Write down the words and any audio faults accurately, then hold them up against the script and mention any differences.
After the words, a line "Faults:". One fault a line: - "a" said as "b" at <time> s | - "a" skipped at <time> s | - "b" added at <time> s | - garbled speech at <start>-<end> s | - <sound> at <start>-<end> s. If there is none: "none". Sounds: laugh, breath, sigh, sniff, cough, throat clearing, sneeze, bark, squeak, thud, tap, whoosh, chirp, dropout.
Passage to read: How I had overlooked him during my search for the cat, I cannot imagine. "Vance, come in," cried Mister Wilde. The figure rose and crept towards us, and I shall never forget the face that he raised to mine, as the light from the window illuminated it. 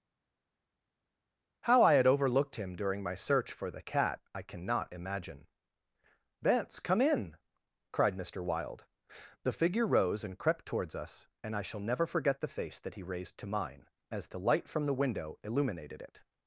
How I had overlooked him during my search for the cat, I cannot imagine. "Vance, come in," cried Mister Wilde. The figure rose and crept towards us, and I shall never forget the face that he raised to mine, as the light from the window illuminated it.
Faults:
none